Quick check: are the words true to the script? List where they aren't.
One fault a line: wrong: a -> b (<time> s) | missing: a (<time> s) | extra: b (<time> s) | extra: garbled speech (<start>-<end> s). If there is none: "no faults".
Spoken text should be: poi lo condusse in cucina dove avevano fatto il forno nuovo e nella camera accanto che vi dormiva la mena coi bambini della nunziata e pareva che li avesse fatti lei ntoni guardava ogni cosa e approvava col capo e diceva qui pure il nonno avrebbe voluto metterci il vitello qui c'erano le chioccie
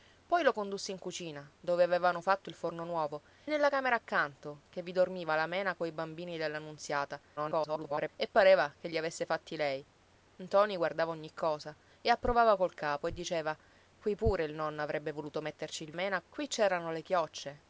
missing: e (3.2 s)
extra: garbled speech (7.4-8.1 s)
wrong: vitello -> mena (15.9 s)